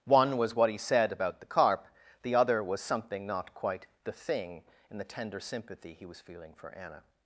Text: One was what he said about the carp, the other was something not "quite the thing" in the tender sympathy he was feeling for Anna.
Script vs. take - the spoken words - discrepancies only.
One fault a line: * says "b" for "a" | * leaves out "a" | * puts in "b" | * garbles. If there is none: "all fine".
all fine